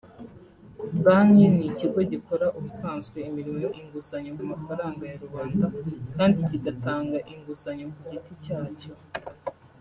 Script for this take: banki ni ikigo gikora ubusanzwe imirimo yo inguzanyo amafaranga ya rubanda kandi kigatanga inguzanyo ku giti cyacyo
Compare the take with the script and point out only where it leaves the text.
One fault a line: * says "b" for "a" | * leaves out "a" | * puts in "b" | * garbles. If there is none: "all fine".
all fine